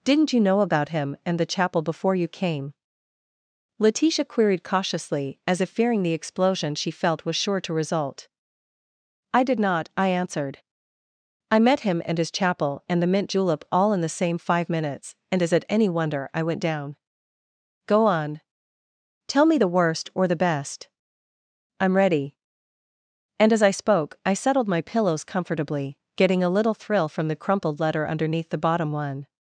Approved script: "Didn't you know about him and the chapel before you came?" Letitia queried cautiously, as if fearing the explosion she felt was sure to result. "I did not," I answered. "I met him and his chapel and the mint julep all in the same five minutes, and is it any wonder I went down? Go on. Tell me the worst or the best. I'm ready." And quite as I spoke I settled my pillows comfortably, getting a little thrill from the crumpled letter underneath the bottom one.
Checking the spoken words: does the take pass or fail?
fail